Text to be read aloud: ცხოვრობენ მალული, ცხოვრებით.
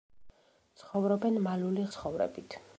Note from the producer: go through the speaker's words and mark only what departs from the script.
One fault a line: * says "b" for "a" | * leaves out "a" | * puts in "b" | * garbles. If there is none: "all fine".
all fine